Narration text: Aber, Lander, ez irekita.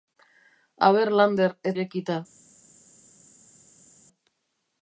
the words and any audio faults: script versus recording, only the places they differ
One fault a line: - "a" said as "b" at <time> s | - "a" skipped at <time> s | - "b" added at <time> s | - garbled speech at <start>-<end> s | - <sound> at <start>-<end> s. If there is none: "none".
none